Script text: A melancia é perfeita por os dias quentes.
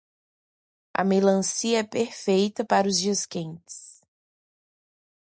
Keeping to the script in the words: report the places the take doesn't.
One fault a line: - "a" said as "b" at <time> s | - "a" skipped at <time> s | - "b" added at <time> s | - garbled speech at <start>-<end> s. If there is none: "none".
- "por" said as "para" at 2.6 s